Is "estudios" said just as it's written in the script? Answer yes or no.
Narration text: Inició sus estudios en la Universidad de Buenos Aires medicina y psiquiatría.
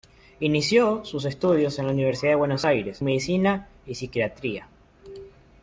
yes